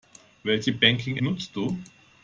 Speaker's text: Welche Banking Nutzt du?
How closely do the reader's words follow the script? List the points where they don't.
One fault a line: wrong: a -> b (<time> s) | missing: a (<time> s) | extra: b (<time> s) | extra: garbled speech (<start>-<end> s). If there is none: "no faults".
no faults